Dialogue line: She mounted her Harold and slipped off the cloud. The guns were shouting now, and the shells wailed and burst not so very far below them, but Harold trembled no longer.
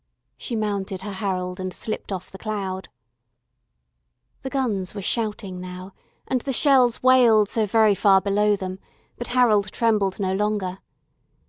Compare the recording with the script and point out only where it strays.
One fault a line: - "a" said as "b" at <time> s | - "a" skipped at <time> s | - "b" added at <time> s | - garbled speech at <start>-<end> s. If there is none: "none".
- "and burst not" skipped at 7.5 s